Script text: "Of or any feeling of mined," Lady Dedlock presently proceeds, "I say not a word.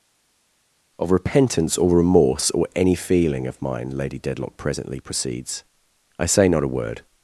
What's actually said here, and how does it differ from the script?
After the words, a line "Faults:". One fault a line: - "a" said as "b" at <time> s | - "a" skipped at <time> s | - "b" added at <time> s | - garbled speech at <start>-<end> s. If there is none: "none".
"Of repentance or remorse or any feeling of mine," Lady Dedlock presently proceeds, "I say not a word.
Faults:
- "repentance" added at 1.1 s
- "remorse or" added at 2.0 s
- "mined" said as "mine" at 3.6 s